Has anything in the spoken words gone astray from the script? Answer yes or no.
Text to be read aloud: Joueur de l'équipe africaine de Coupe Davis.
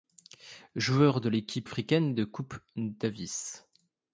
no